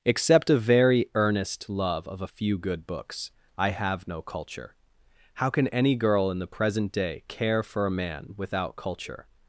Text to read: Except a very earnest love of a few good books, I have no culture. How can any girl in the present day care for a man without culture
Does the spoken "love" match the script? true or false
true